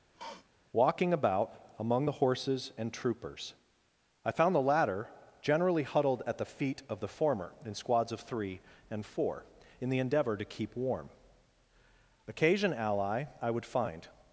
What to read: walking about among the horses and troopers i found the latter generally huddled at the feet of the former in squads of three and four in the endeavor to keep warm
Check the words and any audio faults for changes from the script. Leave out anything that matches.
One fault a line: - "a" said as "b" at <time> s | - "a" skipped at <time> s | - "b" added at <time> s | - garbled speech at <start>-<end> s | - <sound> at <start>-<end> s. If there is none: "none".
- sniff at 0.1-0.5 s
- "occasion ally i would find" added at 12.3 s